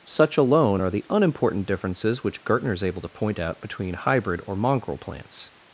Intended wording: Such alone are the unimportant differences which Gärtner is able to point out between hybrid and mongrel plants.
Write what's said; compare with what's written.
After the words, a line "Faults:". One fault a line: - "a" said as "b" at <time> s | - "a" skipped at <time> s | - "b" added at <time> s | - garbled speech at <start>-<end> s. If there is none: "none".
Such alone are the unimportant differences which Gärtner is able to point out between hybrid or mongrel plants.
Faults:
- "and" said as "or" at 4.5 s